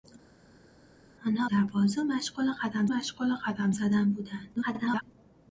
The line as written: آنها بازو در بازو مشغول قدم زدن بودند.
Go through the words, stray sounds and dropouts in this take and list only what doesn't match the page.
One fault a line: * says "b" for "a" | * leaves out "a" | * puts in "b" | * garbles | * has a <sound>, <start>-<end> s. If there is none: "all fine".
* puts in "در"
* says "مشغول قدم" for "در بازو"
* garbles